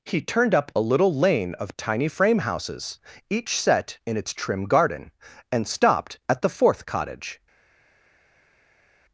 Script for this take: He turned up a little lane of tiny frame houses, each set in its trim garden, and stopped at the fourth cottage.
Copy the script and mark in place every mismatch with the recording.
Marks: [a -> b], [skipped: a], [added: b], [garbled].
He turned up a little lane of tiny frame houses, each set in its trim garden, and stopped at the fourth cottage.